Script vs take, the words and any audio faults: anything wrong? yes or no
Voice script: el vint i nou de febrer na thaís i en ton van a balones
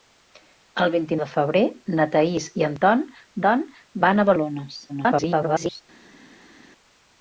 yes